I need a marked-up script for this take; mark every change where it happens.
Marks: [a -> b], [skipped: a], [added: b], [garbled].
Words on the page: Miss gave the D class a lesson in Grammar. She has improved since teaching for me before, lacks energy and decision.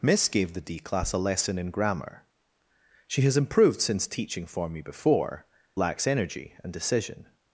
Miss gave the D class a lesson in Grammar. She has improved since teaching for me before, lacks energy and decision.